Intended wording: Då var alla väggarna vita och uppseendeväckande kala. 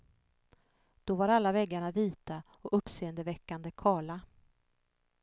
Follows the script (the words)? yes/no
yes